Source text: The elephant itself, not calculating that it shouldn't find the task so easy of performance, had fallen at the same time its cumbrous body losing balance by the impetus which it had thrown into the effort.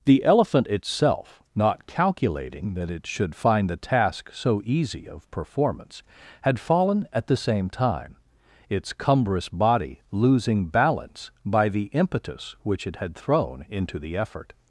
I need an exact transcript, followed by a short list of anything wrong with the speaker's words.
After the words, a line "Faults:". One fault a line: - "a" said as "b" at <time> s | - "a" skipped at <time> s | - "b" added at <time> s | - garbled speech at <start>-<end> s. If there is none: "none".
The elephant itself, not calculating that it should find the task so easy of performance, had fallen at the same time its cumbrous body losing balance by the impetus which it had thrown into the effort.
Faults:
- "shouldn't" said as "should" at 3.0 s